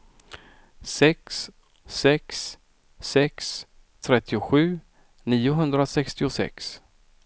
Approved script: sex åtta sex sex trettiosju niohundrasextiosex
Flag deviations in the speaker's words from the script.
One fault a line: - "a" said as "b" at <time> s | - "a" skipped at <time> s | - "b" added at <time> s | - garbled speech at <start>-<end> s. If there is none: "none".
- "åtta" skipped at 1.5 s